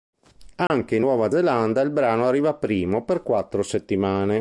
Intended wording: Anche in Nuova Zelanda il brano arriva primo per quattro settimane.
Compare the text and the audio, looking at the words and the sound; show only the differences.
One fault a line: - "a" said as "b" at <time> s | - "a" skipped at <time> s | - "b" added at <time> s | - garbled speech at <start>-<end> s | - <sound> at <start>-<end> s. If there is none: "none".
- dropout at 0.7-0.7 s